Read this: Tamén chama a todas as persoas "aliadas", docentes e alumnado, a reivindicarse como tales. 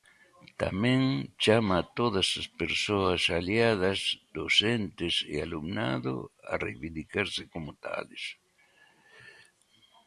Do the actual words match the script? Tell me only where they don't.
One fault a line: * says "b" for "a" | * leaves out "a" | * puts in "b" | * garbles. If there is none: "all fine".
all fine